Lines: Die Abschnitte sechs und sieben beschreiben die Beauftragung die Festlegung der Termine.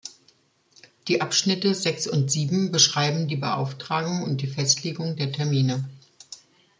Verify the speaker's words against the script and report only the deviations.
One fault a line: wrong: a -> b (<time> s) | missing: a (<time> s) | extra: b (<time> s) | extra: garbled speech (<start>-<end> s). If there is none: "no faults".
extra: und (4.2 s)